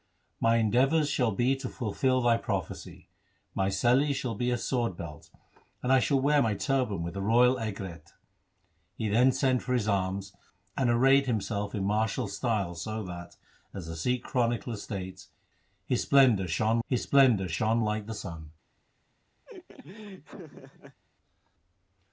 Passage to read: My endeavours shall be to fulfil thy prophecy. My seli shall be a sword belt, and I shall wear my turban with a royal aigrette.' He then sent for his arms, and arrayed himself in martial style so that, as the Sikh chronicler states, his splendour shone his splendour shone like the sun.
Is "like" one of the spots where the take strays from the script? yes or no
no